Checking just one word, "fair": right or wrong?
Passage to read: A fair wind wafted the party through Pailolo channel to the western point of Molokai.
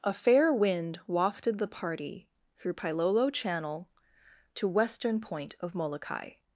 right